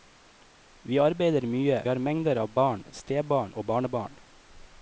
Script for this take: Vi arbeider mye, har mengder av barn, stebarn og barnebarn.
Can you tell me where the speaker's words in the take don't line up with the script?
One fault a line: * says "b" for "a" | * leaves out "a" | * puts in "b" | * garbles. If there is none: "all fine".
all fine